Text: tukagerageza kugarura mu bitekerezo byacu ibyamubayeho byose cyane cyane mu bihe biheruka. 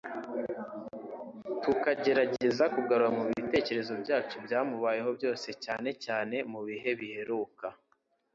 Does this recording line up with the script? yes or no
yes